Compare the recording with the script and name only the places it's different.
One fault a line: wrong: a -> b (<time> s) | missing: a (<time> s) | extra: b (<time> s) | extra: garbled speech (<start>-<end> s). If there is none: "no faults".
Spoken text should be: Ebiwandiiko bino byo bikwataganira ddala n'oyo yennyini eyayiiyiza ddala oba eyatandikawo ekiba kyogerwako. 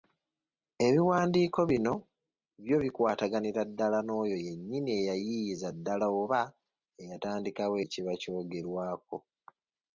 no faults